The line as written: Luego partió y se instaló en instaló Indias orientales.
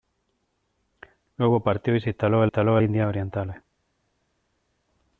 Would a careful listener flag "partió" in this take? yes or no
no